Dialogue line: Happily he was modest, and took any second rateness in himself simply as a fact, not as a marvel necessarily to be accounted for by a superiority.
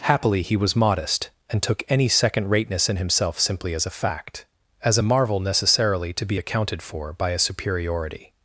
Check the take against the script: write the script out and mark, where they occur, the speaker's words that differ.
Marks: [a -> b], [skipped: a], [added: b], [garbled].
Happily he was modest, and took any second rateness in himself simply as a fact, [skipped: not] as a marvel necessarily to be accounted for by a superiority.